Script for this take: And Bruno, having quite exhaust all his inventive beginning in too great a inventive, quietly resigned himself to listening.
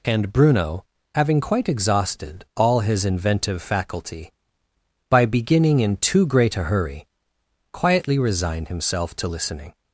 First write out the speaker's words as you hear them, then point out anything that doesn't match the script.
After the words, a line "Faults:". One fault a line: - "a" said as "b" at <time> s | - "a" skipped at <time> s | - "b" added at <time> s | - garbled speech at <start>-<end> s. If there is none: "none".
And Bruno, having quite exhausted all his inventive faculty, by beginning in too great a hurry, quietly resigned himself to listening.
Faults:
- "exhaust" said as "exhausted" at 1.7 s
- "faculty by" added at 3.6 s
- "inventive" said as "hurry" at 6.6 s